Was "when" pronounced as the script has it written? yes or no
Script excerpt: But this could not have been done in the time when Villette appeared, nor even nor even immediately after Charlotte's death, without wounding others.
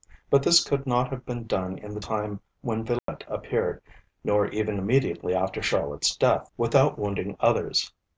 yes